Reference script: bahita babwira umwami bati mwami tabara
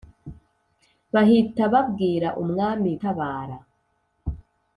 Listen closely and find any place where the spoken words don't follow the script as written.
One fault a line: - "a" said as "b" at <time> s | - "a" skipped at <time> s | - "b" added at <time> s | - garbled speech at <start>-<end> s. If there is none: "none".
- "bati mwami" skipped at 2.9 s